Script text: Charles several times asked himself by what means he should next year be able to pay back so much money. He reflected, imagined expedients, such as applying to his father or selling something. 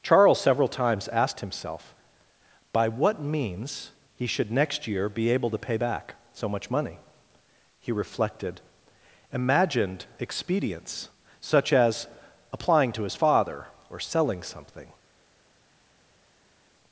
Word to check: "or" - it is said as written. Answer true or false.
true